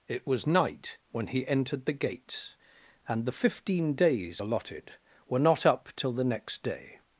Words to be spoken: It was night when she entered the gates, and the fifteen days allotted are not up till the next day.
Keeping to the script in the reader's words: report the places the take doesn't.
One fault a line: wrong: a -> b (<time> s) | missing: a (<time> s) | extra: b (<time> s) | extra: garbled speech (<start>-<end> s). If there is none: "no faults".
wrong: she -> he (1.3 s)
wrong: are -> were (5.3 s)